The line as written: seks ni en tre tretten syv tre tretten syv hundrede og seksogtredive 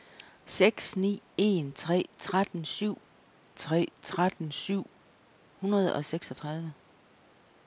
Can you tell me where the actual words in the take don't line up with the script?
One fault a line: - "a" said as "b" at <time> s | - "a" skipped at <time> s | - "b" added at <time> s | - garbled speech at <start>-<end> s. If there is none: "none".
none